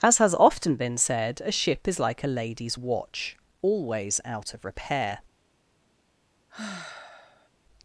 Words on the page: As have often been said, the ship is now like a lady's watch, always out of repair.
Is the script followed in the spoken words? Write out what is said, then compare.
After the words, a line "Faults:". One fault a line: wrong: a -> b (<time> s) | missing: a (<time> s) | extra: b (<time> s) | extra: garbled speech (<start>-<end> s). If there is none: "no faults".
As has often been said, a ship is like a lady's watch, always out of repair.
Faults:
wrong: have -> has (0.2 s)
wrong: the -> a (1.4 s)
missing: now (2.0 s)